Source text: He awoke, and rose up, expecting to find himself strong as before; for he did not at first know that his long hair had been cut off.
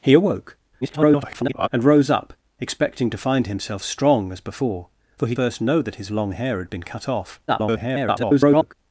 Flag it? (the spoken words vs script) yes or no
yes